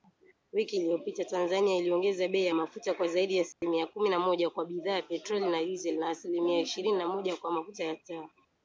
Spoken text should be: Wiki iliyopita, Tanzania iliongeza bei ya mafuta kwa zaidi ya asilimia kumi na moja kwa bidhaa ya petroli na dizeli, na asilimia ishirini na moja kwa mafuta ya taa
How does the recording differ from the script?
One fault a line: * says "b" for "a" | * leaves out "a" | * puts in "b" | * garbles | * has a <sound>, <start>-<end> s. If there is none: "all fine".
* has a dropout, 3.5-3.6 s